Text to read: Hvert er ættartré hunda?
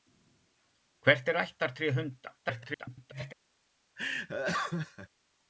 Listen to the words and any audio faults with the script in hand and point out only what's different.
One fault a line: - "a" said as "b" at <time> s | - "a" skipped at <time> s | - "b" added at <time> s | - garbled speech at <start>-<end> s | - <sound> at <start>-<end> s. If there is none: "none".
- garbled speech at 2.4-3.3 s
- laugh at 4.0-5.1 s